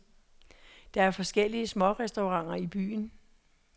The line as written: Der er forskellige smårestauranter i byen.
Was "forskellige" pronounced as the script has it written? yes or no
yes